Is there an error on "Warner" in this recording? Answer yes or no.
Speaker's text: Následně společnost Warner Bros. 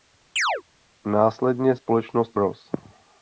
yes